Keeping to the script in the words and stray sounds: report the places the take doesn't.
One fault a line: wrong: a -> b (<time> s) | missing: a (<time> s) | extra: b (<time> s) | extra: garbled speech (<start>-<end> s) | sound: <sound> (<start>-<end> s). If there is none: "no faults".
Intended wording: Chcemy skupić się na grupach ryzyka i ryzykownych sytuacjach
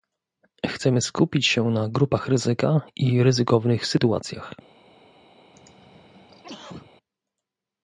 sound: throat clearing (5.5-6.9 s)